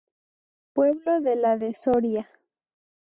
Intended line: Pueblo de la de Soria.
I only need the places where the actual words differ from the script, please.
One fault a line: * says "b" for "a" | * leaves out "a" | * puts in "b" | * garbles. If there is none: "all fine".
all fine